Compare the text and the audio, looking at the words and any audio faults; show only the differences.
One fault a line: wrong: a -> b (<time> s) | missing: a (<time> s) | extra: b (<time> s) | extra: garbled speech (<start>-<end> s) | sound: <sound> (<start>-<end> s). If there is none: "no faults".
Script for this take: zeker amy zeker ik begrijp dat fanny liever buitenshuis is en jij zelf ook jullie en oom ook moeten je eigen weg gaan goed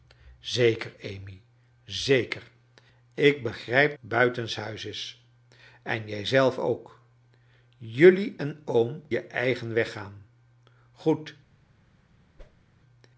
missing: dat fanny liever (4.0 s)
missing: ook moeten (9.0 s)
sound: whoosh (12.4-12.6 s)